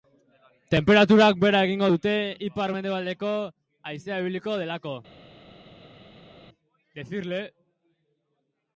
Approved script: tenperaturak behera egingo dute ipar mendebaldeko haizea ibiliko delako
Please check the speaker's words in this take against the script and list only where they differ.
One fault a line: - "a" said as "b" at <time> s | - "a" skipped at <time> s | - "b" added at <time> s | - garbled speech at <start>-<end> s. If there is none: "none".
none